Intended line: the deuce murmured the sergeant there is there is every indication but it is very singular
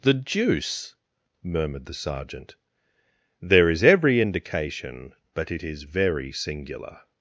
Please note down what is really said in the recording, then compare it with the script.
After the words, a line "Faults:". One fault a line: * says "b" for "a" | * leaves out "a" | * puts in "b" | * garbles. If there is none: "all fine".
the deuce murmured the sergeant there is every indication but it is very singular
Faults:
* leaves out "there is"